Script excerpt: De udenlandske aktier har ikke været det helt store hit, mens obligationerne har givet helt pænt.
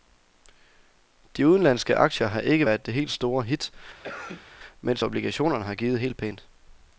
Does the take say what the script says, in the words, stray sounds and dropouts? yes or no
no